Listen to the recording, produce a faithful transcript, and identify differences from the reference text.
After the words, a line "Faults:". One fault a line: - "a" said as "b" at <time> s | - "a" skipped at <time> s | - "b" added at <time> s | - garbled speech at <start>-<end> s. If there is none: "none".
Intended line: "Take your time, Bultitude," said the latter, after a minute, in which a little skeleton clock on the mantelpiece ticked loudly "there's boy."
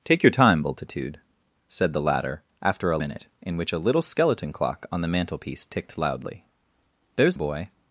"Take your time, Bultitude," said the latter, after a minute, in which a little skeleton clock on the mantelpiece ticked loudly "there's boy."
Faults:
none